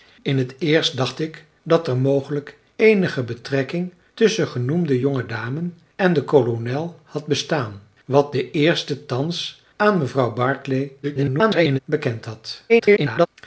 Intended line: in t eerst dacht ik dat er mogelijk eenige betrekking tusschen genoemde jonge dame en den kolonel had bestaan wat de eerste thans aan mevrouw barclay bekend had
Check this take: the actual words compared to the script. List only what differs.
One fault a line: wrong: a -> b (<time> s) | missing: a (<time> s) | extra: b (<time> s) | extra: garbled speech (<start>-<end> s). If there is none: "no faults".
extra: garbled speech (11.0-11.8 s)
extra: garbled speech (12.7-13.3 s)